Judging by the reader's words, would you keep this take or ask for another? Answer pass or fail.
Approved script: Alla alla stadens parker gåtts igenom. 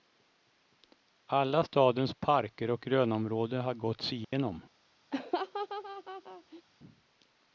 fail